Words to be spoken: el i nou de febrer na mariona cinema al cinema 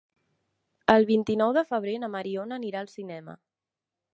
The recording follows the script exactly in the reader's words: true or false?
false